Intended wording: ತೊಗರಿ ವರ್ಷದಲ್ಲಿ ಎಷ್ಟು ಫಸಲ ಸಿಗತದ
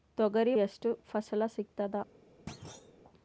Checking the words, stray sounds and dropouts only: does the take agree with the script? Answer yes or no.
no